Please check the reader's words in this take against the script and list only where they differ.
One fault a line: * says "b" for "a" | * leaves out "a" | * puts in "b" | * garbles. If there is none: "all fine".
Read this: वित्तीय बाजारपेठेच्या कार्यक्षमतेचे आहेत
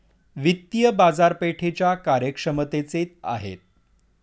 all fine